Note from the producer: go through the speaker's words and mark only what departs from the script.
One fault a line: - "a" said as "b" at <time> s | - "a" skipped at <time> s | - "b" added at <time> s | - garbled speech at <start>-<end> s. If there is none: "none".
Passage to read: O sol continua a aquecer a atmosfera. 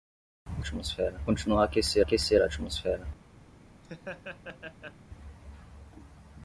- "sol" said as "atmosfera" at 0.6 s
- "aquecer" added at 2.0 s